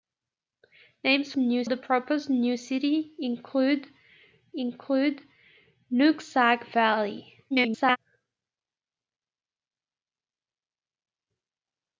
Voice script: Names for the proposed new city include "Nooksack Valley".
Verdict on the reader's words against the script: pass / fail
fail